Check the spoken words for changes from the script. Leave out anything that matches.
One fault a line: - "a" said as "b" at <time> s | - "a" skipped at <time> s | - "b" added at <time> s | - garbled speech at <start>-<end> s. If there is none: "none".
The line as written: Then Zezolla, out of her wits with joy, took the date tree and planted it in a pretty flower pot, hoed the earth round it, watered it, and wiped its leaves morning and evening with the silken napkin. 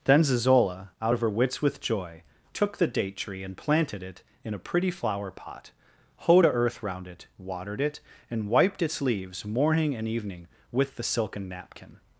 - "the" said as "a" at 6.4 s